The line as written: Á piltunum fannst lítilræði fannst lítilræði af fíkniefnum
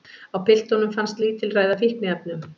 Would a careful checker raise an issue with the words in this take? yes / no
yes